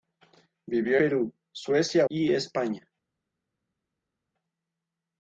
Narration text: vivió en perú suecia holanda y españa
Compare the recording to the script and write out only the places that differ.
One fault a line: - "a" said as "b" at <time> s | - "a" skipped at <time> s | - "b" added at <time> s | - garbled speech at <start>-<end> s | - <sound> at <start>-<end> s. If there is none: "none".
- "en" skipped at 1.0 s
- "holanda" skipped at 2.1 s